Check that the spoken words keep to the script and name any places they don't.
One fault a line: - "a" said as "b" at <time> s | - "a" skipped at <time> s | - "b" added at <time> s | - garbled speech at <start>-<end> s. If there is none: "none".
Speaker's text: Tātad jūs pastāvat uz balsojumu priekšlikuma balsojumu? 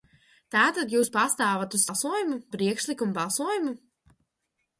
none